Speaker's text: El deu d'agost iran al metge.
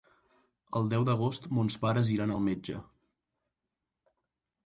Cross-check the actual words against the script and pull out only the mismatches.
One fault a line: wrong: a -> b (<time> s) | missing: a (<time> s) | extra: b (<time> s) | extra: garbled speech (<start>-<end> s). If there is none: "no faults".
extra: mons pares (1.6 s)